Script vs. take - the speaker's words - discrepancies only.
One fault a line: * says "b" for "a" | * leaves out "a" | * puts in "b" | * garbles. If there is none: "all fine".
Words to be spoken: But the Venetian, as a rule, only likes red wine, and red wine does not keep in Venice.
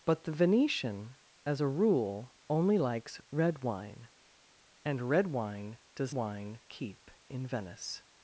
* says "wine" for "not"